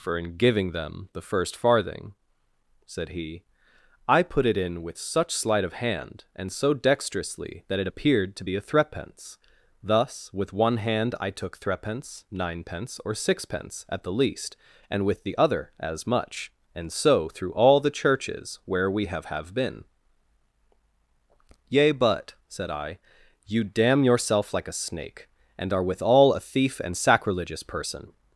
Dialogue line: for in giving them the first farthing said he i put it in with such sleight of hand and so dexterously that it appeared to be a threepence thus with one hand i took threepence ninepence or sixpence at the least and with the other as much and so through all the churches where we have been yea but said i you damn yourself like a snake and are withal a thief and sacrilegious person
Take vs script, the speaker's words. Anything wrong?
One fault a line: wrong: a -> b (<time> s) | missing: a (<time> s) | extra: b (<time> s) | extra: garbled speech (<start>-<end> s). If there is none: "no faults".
extra: have (19.2 s)